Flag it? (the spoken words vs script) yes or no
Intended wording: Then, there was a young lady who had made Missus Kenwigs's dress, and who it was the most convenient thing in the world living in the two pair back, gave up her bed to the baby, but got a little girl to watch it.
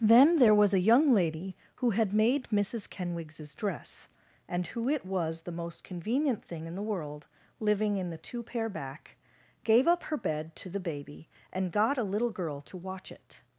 yes